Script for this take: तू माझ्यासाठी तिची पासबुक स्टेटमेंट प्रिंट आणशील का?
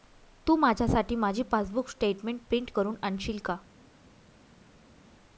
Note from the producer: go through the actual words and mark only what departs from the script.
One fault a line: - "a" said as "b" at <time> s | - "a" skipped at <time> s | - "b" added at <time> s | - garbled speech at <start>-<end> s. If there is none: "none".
- "तिची" said as "माझी" at 1.1 s
- "करून" added at 2.7 s